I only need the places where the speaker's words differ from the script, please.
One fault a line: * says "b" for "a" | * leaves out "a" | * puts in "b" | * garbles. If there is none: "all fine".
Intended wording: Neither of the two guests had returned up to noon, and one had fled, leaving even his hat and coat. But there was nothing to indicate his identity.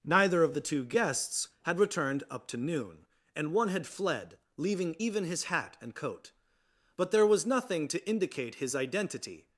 all fine